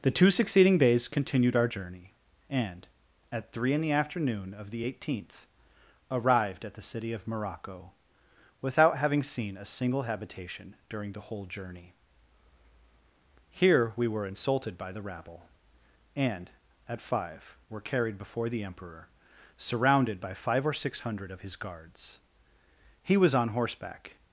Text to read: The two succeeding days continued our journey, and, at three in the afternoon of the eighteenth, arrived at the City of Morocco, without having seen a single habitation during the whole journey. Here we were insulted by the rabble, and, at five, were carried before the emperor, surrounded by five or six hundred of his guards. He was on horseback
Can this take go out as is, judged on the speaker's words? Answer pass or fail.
pass